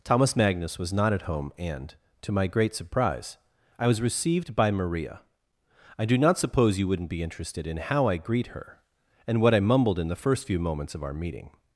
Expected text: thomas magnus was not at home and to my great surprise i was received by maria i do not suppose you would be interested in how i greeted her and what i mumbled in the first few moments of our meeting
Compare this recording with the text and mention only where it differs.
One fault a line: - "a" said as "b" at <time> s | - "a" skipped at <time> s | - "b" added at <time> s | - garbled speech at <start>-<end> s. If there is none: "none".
- "would" said as "wouldn't" at 6.9 s
- "greeted" said as "greet" at 8.2 s